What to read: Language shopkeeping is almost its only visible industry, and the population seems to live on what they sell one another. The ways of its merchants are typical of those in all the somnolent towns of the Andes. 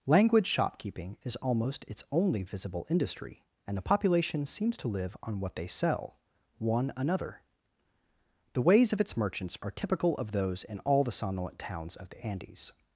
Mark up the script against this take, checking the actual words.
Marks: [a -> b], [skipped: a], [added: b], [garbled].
Language shopkeeping is almost its only visible industry, and the population seems to live on what they sell one another. The ways of its merchants are typical of those in all the somnolent towns of the Andes.